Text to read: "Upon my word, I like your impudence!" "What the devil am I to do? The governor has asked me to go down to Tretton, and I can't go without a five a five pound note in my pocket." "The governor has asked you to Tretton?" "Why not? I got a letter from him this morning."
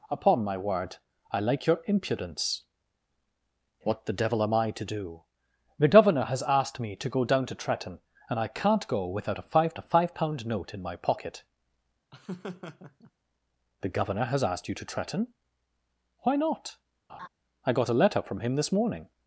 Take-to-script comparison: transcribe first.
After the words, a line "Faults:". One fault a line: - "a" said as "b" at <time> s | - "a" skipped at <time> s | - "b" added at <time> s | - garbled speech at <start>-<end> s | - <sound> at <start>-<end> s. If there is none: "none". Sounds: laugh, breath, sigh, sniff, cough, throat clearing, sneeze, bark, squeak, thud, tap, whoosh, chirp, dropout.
"Upon my word, I like your impudence!" "What the devil am I to do? The governor has asked me to go down to Tretton, and I can't go without a five a five pound note in my pocket." "The governor has asked you to Tretton?" "Why not? I got a letter from him this morning."
Faults:
- laugh at 12.1-13.1 s
- laugh at 17.1-17.3 s